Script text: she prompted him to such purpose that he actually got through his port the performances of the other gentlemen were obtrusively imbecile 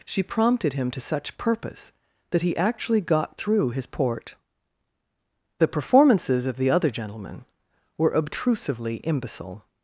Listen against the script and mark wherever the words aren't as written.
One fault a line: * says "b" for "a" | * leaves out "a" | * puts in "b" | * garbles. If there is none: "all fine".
all fine